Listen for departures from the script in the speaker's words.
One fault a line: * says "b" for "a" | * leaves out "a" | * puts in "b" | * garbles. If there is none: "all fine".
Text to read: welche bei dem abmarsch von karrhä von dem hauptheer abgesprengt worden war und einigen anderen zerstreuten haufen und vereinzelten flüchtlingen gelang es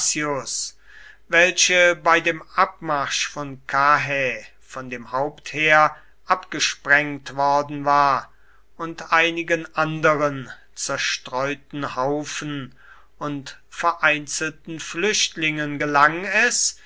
all fine